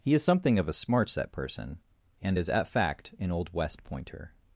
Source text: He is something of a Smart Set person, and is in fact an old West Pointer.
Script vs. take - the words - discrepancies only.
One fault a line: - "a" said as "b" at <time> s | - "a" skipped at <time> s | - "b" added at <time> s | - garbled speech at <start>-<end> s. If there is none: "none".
- "in" said as "at" at 2.5 s